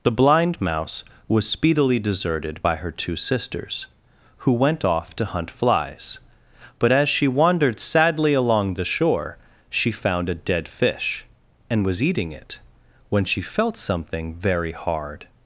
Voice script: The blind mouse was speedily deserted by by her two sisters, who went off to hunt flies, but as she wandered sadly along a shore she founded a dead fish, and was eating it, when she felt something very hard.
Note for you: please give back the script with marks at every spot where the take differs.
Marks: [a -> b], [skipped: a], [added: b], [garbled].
The blind mouse was speedily deserted by [skipped: by] her two sisters, who went off to hunt flies, but as she wandered sadly along [a -> the] shore she [founded -> found] a dead fish, and was eating it, when she felt something very hard.